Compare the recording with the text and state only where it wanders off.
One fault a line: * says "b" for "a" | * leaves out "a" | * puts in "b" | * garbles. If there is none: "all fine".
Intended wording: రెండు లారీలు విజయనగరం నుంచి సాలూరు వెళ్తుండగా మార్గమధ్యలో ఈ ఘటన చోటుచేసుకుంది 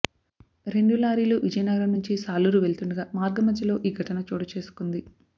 all fine